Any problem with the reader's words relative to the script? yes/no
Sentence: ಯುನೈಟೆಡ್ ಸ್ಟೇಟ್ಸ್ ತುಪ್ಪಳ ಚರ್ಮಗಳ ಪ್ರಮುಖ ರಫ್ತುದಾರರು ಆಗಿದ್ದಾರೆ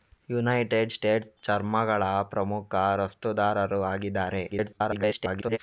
yes